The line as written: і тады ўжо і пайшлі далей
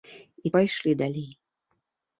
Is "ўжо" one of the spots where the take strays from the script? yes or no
yes